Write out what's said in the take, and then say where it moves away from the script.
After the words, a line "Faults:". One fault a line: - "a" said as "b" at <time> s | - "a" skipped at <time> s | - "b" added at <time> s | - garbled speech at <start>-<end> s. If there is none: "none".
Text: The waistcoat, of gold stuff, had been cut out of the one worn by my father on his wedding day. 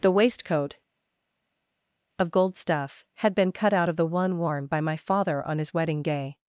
The waistcoat, of gold stuff, had been cut out of the one worn by my father on his wedding day.
Faults:
none